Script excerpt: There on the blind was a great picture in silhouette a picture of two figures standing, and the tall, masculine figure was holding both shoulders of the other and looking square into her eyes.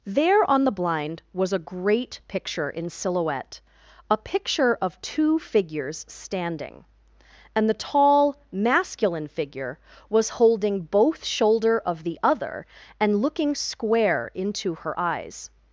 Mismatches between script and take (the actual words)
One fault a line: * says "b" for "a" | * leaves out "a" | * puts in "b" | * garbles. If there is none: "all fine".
* says "shoulder" for "shoulders"